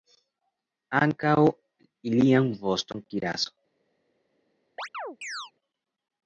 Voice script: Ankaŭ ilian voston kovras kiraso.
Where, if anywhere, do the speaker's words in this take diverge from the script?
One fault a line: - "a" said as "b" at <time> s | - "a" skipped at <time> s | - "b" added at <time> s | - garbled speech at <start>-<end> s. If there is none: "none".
- "kovras" skipped at 3.1 s